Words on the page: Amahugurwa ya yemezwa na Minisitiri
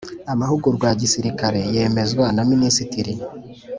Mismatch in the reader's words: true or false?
true